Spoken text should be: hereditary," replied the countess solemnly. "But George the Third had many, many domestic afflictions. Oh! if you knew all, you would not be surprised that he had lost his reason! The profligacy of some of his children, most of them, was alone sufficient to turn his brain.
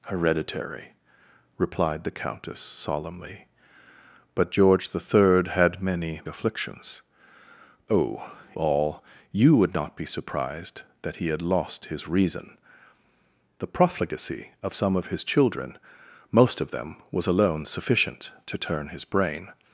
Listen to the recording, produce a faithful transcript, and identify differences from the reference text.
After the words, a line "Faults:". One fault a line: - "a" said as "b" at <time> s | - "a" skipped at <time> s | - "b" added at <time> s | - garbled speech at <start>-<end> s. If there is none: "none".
hereditary," replied the countess solemnly. "But George the Third had many, afflictions. Oh! all, you would not be surprised that he had lost his reason! The profligacy of some of his children, most of them, was alone sufficient to turn his brain.
Faults:
- "many domestic" skipped at 6.2 s
- "if you knew" skipped at 8.3 s